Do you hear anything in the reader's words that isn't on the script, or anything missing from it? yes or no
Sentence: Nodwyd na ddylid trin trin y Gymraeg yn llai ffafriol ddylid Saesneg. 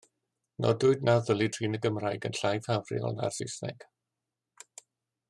yes